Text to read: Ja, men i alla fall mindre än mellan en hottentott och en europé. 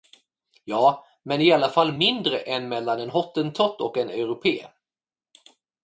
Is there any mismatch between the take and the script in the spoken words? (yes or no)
no